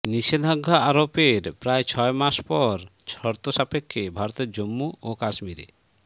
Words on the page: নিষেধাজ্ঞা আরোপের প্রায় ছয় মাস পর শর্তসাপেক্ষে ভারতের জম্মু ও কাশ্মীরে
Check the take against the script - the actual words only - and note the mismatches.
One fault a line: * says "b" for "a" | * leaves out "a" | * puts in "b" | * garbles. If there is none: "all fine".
all fine